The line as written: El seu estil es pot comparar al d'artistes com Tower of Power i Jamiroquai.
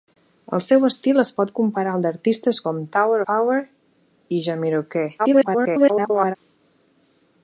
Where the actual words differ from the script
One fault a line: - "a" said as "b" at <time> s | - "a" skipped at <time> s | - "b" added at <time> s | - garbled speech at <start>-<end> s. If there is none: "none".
- "of" skipped at 3.2 s
- garbled speech at 5.2-6.4 s